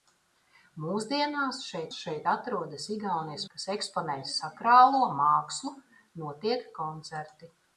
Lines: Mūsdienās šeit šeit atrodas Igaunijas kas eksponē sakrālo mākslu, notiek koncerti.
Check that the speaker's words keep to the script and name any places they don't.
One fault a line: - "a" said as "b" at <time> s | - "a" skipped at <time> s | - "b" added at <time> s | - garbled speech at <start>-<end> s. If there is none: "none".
none